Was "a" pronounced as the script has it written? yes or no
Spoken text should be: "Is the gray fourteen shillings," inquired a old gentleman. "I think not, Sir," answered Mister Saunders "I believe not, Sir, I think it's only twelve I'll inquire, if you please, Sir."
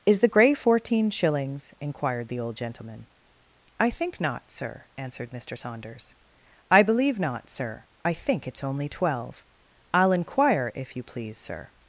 no